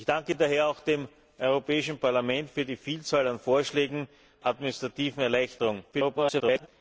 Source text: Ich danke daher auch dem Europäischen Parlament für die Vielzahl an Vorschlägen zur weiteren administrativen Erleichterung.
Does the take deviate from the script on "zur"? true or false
true